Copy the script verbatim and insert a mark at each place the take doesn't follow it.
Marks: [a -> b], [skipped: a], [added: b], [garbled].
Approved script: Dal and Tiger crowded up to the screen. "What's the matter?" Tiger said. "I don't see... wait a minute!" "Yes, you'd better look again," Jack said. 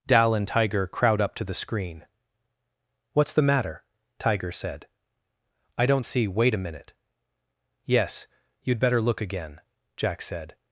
Dal and Tiger [crowded -> crowd] up to the screen. "What's the matter?" Tiger said. "I don't see... wait a minute!" "Yes, you'd better look again," Jack said.